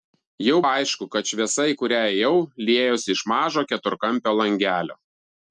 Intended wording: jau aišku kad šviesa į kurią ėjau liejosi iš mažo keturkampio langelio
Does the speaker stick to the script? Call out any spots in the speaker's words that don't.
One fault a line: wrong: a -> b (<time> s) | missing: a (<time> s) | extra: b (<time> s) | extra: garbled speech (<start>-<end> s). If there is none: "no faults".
no faults